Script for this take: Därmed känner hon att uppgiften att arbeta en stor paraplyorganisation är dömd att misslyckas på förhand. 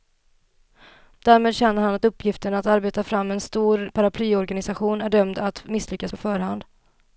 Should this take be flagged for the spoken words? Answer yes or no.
yes